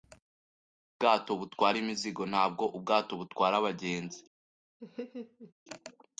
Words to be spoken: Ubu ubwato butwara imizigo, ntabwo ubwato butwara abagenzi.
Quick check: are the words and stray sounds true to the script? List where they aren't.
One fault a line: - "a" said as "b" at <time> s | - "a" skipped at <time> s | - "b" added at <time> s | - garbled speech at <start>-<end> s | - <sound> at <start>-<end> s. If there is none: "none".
- laugh at 4.8-5.5 s